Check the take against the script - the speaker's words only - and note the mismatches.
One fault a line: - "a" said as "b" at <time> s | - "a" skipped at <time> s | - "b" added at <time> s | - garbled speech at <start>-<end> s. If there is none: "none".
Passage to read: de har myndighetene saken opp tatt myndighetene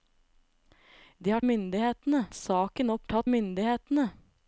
none